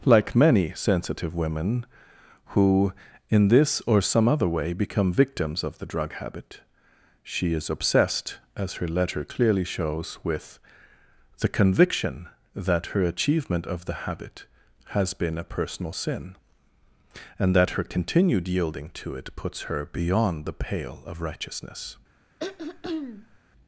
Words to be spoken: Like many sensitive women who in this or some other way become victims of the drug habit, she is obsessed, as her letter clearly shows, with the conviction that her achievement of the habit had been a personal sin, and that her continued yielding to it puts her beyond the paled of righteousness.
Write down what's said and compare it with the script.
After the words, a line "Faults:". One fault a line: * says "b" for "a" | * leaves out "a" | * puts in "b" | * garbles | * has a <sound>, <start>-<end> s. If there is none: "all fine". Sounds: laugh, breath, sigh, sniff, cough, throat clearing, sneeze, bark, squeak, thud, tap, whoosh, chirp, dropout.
Like many sensitive women who in this or some other way become victims of the drug habit, she is obsessed, as her letter clearly shows, with the conviction that her achievement of the habit has been a personal sin, and that her continued yielding to it puts her beyond the pale of righteousness.
Faults:
* says "has" for "had"
* says "pale" for "paled"
* has a throat clearing, 22.4-23.4 s